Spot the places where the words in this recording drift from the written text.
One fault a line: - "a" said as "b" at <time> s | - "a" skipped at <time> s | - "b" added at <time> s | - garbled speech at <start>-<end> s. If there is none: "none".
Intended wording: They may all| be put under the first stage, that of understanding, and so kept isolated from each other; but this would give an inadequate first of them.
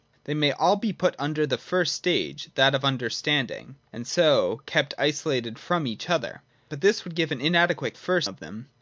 none